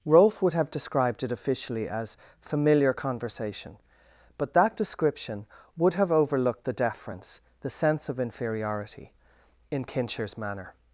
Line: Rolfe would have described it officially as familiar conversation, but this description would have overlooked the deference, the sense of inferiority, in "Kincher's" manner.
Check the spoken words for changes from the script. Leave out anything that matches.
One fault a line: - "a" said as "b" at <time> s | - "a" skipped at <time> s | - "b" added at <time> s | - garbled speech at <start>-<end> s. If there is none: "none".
- "this" said as "that" at 4.5 s